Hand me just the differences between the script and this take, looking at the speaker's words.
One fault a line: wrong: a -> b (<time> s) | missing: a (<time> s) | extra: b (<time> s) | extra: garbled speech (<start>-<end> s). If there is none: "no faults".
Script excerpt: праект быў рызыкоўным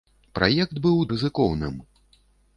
no faults